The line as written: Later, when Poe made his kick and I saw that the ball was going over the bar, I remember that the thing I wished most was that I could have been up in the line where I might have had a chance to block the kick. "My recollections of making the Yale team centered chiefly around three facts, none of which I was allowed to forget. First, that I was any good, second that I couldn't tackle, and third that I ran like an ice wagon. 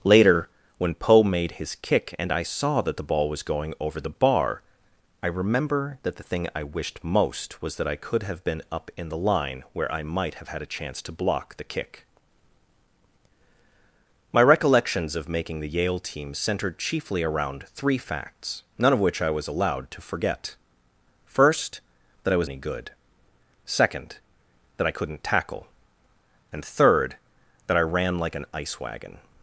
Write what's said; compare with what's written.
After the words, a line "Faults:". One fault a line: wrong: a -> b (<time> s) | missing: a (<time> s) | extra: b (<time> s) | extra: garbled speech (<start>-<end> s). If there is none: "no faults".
Later, when Poe made his kick and I saw that the ball was going over the bar, I remember that the thing I wished most was that I could have been up in the line where I might have had a chance to block the kick. "My recollections of making the Yale team centered chiefly around three facts, none of which I was allowed to forget. First, that I was any good, second that I couldn't tackle, and third that I ran like an ice wagon.
Faults:
no faults